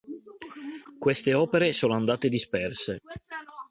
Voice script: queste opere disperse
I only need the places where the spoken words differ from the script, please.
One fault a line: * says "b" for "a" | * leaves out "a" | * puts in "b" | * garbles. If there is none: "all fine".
* puts in "sono andate"